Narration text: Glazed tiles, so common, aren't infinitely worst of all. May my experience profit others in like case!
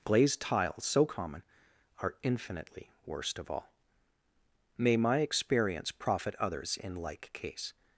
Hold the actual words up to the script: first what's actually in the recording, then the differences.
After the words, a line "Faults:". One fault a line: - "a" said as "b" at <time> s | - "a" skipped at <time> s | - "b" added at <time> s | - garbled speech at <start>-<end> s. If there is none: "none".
Glazed tiles, so common, are infinitely worst of all. May my experience profit others in like case!
Faults:
- "aren't" said as "are" at 2.0 s